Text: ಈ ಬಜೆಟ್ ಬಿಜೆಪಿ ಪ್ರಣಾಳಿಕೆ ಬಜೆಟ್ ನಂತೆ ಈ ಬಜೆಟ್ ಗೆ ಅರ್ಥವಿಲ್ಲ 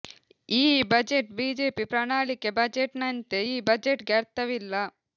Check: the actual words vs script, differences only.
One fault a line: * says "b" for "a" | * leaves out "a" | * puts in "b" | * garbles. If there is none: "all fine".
all fine